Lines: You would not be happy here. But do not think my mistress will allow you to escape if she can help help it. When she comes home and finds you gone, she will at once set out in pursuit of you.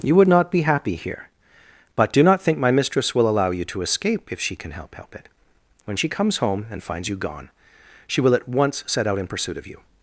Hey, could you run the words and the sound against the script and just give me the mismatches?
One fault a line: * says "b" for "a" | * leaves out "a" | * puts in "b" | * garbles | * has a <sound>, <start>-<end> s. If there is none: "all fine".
all fine